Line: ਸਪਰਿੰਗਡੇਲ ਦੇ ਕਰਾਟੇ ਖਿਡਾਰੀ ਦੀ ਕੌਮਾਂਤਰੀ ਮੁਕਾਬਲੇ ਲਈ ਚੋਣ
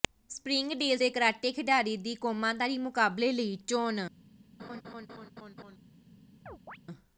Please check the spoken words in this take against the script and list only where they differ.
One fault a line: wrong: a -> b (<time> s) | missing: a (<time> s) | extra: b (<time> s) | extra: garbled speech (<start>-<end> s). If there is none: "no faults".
no faults